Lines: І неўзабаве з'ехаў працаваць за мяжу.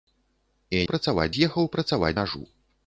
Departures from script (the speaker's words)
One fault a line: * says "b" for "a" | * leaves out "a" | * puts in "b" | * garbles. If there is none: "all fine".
* says "працаваць" for "неўзабаве"
* leaves out "за"